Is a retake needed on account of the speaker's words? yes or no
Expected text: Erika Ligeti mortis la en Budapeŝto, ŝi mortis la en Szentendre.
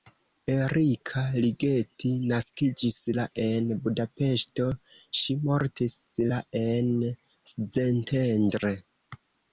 yes